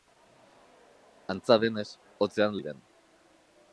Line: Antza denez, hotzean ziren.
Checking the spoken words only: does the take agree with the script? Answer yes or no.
yes